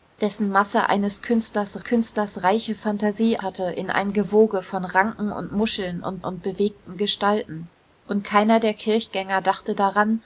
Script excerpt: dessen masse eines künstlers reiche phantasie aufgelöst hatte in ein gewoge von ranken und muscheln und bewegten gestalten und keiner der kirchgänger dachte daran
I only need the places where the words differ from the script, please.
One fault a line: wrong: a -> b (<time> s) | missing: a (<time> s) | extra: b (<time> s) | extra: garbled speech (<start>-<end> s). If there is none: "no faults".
extra: künstlers (1.8 s)
missing: aufgelöst (3.4 s)
extra: und (6.2 s)